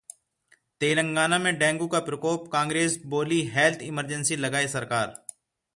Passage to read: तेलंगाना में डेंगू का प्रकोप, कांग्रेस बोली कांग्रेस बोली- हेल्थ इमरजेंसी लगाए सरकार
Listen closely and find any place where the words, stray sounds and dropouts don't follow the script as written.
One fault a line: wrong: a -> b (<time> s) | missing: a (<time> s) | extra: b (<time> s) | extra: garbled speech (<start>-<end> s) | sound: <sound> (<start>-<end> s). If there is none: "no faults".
missing: कांग्रेस बोली (3.5 s)